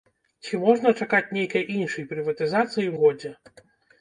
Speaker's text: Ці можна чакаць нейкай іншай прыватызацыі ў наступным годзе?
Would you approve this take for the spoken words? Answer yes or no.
no